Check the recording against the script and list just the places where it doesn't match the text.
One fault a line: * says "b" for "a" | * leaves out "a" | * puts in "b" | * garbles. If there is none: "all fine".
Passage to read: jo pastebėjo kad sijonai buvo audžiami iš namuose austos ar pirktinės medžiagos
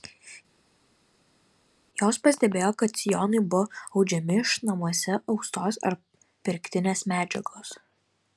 * says "jos" for "jo"